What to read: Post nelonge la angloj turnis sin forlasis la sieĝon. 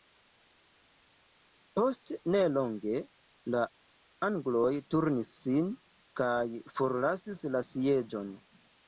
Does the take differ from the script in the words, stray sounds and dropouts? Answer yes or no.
yes